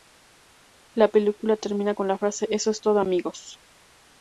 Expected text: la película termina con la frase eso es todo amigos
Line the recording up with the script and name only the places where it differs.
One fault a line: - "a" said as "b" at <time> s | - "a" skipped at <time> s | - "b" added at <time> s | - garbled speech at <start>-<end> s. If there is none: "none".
none